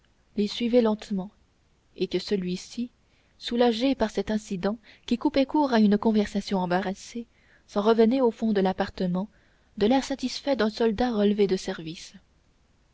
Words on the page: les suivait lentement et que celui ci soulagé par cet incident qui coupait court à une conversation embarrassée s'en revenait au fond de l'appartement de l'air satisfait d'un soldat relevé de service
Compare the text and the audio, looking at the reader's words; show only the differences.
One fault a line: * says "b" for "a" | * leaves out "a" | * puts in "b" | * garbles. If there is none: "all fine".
all fine